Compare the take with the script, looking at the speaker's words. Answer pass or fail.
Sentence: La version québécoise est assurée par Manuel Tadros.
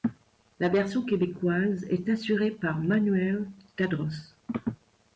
pass